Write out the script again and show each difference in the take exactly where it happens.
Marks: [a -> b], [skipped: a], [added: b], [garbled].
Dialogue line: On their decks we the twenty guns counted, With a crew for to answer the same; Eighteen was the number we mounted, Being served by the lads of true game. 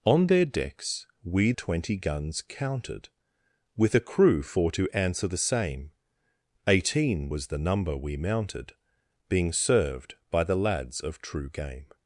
On their decks we [skipped: the] twenty guns counted, With a crew for to answer the same; Eighteen was the number we mounted, Being served by the lads of true game.